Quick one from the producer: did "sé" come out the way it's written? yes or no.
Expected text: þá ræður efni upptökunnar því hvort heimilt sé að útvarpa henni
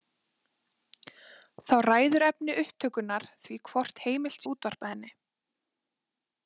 no